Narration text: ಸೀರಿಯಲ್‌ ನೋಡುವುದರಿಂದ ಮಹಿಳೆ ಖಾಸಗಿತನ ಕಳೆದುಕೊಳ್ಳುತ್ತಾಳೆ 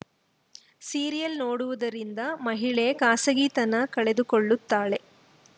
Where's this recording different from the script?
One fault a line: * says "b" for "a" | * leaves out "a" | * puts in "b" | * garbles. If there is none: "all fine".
all fine